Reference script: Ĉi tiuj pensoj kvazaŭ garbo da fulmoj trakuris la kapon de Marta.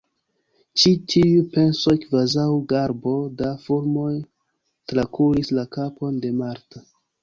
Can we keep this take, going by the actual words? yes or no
yes